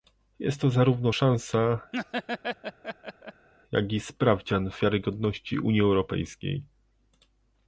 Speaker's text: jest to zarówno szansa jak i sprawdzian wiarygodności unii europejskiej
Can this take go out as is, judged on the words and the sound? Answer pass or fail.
fail